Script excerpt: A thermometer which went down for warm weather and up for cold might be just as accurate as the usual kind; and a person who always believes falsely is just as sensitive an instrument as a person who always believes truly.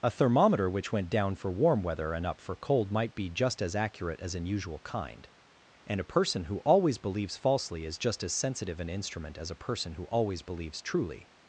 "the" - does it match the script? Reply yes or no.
no